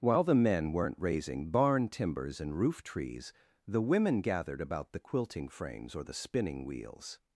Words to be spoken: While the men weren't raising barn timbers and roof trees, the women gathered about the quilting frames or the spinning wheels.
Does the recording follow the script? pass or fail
pass